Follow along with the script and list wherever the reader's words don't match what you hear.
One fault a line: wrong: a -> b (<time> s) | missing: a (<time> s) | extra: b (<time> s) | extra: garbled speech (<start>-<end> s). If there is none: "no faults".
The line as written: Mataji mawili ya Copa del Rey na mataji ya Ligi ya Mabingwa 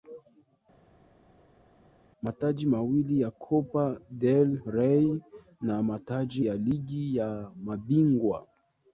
no faults